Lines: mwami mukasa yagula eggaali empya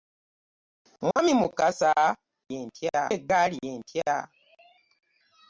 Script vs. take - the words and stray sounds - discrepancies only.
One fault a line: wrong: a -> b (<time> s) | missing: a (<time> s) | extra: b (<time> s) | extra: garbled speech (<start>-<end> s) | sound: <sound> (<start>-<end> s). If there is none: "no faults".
sound: dropout (1.1-1.2 s)
wrong: yagula -> empya (2.6 s)